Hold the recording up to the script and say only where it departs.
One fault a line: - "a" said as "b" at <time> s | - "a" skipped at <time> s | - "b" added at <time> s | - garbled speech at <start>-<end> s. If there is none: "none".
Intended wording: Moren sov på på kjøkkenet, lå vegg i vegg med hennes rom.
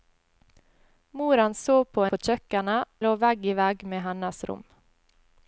none